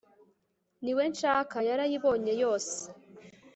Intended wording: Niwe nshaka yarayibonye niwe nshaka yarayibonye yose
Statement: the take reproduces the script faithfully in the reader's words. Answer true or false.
false